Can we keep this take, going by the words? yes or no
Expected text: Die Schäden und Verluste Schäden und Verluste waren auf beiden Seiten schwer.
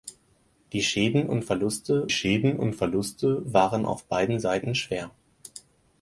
yes